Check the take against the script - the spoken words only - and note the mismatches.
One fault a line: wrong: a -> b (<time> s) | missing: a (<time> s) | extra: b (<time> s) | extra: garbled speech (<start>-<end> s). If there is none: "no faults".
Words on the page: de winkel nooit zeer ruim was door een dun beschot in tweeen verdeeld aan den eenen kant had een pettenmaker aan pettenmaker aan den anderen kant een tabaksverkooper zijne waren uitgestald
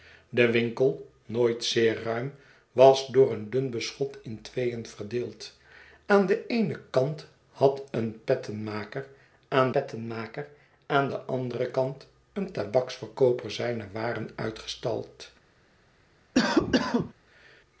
no faults